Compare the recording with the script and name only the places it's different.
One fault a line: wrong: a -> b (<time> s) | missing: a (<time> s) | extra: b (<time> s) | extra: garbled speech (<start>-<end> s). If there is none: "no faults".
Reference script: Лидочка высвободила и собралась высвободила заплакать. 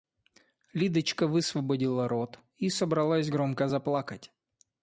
extra: рот (2.1 s)
wrong: высвободила -> громко (3.2 s)